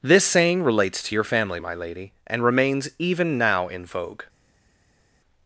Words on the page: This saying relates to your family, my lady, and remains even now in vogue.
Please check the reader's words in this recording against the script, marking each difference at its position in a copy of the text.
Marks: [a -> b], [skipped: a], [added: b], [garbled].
This saying relates to your family, my lady, and remains even now in vogue.